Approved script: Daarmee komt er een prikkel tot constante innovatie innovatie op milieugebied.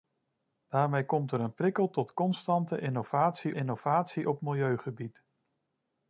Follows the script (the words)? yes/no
yes